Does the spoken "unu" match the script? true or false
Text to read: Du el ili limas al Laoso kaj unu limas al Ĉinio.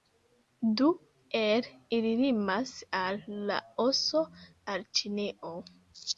false